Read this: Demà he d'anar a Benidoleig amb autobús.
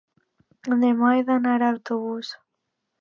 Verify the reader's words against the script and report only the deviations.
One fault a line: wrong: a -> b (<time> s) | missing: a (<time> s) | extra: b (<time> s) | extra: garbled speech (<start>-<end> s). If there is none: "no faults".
missing: Benidoleig amb (1.7 s)